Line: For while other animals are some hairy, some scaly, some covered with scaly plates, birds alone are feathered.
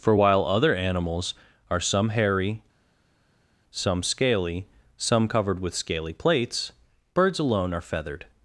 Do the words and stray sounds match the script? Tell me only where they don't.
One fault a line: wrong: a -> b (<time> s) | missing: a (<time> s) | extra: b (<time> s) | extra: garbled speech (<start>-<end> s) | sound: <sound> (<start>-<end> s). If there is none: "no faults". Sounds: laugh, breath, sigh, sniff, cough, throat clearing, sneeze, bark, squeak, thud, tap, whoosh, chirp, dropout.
no faults